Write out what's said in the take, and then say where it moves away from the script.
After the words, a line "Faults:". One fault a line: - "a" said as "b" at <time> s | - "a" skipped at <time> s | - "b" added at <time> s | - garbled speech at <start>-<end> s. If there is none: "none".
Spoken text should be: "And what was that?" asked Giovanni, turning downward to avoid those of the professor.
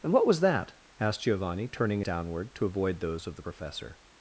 "And what was that?" asked Giovanni, turning downward to avoid those of the professor.
Faults:
none